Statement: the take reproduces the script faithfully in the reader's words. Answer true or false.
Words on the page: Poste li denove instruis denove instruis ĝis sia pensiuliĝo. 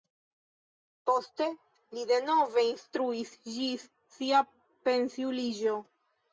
false